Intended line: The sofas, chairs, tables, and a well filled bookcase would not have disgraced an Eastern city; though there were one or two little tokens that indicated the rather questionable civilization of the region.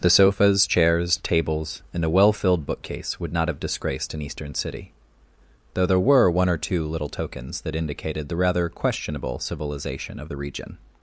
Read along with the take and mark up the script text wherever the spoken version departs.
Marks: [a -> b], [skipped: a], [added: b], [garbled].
The sofas, chairs, tables, and a well filled bookcase would not have disgraced an Eastern city; though there were one or two little tokens that indicated the rather questionable civilization of the region.